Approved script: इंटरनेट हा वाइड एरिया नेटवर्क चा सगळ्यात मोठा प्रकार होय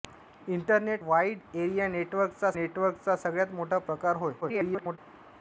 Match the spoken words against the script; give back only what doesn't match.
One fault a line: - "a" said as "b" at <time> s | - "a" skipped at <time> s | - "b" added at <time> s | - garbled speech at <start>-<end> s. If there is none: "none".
- "हा" skipped at 1.0 s
- "नेटवर्क चा" added at 2.5 s
- garbled speech at 4.4-5.0 s